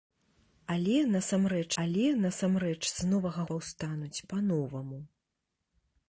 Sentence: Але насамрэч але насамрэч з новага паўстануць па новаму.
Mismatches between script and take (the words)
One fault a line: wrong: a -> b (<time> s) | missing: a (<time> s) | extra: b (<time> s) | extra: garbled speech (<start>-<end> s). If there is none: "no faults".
no faults